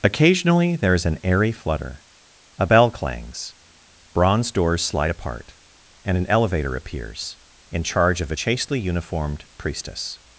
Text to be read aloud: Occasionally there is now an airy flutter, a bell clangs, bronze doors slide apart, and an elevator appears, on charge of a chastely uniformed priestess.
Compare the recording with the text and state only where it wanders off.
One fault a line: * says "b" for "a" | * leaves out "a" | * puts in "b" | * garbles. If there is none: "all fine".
* leaves out "now"
* says "in" for "on"